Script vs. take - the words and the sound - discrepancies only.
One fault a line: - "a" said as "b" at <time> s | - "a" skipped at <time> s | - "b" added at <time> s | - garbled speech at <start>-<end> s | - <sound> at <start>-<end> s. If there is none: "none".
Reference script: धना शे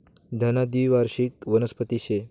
- "द्वीवार्षिक वनस्पती" added at 0.7 s